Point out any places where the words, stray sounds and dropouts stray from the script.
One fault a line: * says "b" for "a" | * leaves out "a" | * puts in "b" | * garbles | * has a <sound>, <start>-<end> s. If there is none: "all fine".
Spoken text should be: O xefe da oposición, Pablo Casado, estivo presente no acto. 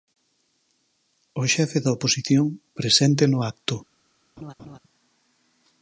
* leaves out "Pablo Casado estivo"
* has a laugh, 4.4-4.8 s